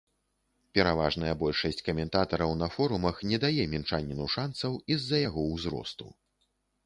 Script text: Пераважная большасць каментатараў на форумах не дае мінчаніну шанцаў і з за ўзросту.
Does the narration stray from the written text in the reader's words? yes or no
yes